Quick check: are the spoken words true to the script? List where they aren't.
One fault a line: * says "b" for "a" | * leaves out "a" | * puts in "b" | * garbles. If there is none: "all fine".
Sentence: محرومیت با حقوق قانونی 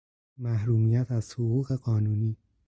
* says "از" for "با"